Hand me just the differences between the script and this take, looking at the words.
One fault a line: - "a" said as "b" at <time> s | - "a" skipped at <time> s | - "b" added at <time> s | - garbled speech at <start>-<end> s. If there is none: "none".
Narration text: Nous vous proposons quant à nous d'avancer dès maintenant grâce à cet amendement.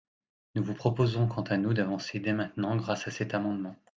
none